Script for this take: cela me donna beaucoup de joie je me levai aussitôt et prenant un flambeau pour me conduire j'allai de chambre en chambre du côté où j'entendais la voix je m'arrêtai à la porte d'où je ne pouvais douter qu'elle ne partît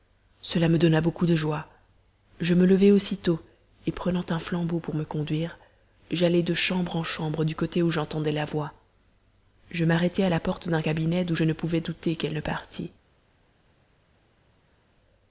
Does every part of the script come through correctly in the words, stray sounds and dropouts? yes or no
no